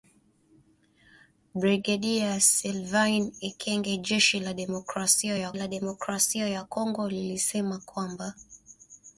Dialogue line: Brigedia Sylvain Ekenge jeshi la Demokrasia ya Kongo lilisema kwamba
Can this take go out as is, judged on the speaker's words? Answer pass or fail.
fail